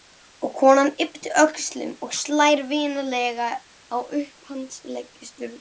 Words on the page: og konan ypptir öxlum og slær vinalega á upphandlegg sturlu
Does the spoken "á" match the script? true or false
true